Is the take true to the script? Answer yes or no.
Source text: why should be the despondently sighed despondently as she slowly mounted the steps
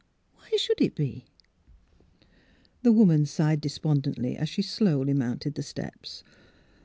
no